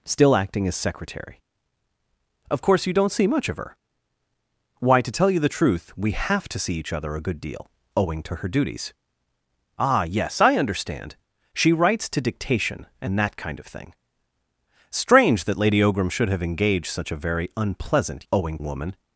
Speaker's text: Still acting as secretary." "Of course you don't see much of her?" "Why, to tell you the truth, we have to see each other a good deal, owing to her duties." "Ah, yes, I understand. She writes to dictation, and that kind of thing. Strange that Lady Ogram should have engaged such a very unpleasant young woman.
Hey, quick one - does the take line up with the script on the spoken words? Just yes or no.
no